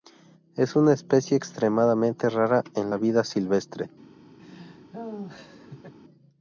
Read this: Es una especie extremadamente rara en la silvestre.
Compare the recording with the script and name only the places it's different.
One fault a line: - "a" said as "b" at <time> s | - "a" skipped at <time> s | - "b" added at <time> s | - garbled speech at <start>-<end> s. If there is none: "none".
- "vida" added at 3.0 s